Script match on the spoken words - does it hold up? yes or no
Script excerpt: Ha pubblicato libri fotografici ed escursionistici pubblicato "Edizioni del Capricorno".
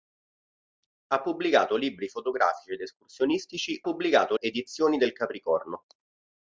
yes